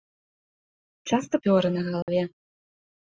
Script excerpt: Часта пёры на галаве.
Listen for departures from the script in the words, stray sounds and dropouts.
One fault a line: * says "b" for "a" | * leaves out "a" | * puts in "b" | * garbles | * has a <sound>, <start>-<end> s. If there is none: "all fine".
* has a dropout, 2.0-2.1 s